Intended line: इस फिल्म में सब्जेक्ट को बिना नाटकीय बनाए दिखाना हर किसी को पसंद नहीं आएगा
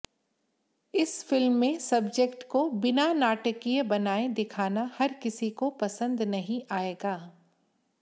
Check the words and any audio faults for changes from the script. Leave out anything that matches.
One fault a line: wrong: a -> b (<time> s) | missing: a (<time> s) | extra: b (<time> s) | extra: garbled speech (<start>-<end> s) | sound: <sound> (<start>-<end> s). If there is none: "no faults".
no faults